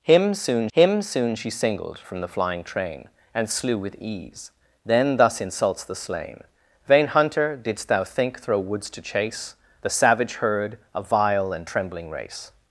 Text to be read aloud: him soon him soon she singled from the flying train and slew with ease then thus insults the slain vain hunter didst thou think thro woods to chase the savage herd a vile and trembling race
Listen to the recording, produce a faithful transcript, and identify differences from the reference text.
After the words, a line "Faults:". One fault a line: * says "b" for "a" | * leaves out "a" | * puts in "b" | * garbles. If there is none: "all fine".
him soon him soon she singled from the flying train and slew with ease then thus insults the slain vain hunter didst thou think thro woods to chase the savage herd a vile and trembling race
Faults:
all fine